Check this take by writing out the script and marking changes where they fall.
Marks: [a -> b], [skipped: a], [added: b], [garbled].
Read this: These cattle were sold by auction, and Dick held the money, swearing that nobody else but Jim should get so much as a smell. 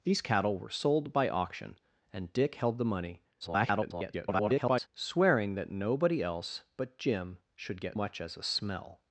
These cattle were sold by auction, and Dick held the money, [garbled] swearing that nobody else but Jim should get [skipped: so] much as a smell.